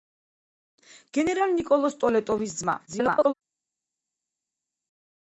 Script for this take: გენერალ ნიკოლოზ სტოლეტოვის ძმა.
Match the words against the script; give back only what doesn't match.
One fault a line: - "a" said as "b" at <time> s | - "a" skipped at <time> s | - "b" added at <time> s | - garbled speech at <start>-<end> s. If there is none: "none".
- garbled speech at 2.9-3.3 s